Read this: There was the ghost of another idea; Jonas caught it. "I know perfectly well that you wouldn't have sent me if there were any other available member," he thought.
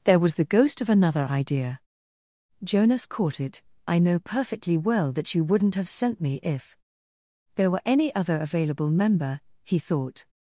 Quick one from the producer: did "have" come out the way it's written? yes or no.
yes